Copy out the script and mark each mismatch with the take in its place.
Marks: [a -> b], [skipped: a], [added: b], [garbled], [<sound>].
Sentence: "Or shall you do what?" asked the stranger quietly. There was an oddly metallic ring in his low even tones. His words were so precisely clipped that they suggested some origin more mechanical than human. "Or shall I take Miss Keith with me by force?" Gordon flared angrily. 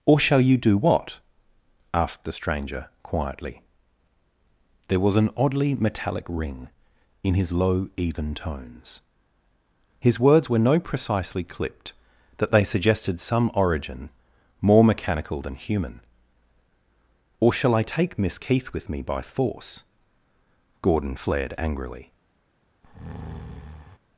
"Or shall you do what?" asked the stranger quietly. There was an oddly metallic ring in his low even tones. His words were [so -> no] precisely clipped that they suggested some origin more mechanical than human. "Or shall I take Miss Keith with me by force?" Gordon flared angrily. [breath]